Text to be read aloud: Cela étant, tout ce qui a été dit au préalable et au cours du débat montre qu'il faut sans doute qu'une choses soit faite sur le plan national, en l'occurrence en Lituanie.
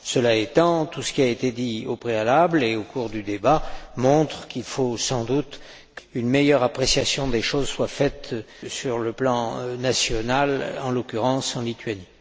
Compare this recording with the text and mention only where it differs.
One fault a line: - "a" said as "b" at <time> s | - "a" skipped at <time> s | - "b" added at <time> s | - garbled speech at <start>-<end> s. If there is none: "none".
- "meilleure appréciation des" added at 6.3 s